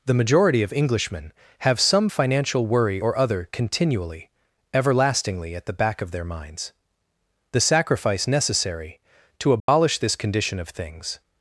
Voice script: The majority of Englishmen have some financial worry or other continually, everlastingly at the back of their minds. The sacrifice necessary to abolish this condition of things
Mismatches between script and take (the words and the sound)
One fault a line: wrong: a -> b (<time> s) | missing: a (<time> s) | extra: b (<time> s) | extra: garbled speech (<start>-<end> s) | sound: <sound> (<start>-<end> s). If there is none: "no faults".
sound: dropout (9.6-9.7 s)